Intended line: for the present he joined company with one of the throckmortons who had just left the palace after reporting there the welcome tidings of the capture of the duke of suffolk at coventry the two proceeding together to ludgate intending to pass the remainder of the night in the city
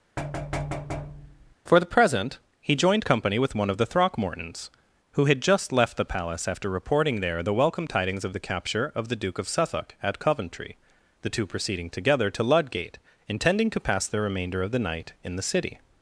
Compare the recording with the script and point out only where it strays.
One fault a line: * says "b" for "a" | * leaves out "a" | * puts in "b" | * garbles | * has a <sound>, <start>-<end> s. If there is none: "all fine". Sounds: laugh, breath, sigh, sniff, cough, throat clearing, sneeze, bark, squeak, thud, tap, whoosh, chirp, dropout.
* has a thud, 0.2-1.6 s